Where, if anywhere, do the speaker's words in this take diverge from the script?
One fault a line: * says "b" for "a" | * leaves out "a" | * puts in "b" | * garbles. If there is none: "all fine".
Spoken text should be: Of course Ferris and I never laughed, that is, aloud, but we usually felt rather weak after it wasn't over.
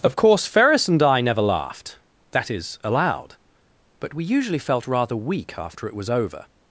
* says "was" for "wasn't"